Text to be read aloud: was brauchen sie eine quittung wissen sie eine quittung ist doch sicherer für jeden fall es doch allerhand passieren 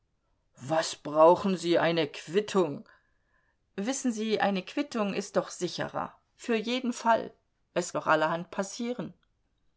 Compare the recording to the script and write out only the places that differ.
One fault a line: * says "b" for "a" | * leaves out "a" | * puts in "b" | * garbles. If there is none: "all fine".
all fine